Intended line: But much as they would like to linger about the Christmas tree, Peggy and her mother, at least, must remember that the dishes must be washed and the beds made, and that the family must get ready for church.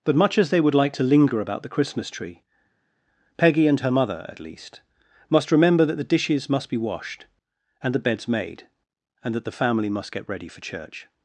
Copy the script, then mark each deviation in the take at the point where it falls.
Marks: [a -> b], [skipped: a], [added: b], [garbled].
But much as they would like to linger about the Christmas tree, Peggy and her mother, at least, must remember that the dishes must be washed and the beds made, and that the family must get ready for church.